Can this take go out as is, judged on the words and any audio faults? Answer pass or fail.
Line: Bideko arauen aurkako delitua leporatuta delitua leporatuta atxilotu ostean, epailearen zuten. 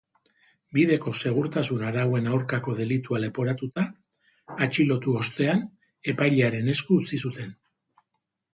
fail